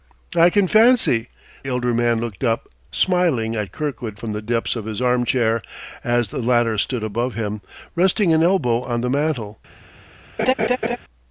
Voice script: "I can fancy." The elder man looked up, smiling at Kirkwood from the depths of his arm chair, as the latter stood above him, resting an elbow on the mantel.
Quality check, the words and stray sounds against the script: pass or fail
fail